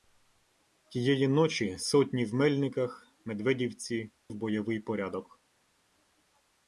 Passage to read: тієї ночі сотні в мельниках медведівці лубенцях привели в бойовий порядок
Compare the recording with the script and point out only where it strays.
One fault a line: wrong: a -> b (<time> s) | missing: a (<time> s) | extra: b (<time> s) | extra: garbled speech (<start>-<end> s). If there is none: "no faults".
missing: лубенцях привели (4.1 s)